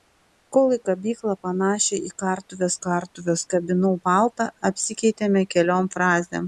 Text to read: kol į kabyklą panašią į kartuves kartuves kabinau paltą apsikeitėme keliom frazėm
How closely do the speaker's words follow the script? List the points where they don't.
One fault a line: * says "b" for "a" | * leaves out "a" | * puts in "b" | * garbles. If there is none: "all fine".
all fine